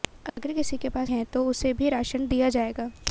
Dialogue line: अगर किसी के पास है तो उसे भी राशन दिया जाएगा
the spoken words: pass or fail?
pass